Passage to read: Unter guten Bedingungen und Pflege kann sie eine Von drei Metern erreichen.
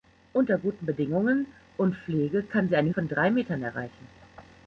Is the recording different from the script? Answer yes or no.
no